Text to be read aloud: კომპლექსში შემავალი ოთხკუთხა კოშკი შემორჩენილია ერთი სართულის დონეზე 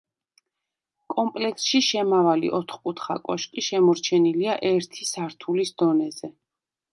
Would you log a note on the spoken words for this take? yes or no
no